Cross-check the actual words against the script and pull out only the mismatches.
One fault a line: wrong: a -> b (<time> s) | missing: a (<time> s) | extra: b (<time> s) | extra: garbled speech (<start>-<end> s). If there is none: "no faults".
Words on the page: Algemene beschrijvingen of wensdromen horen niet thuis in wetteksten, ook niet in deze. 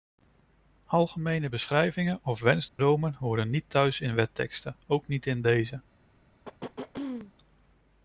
no faults